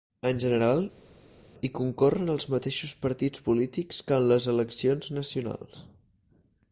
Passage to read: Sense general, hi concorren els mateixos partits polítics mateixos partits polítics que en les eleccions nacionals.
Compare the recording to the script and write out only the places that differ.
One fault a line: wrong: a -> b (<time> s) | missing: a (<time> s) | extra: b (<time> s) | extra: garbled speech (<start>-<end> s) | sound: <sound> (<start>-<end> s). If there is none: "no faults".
wrong: Sense -> En (0.3 s)
missing: mateixos partits polítics (4.0 s)